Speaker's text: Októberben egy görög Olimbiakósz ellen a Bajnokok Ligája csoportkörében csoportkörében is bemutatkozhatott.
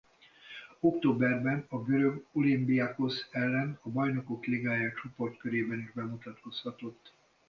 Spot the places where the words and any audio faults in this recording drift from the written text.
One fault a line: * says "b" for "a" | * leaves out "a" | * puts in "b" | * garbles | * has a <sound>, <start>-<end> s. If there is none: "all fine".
* says "a" for "egy"
* leaves out "csoportkörében"